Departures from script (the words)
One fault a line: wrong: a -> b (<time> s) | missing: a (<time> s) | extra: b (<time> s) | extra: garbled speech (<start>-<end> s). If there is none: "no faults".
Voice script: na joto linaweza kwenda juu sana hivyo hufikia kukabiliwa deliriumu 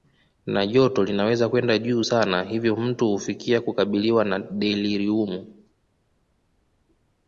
extra: mtu (2.8 s)
extra: na (4.2 s)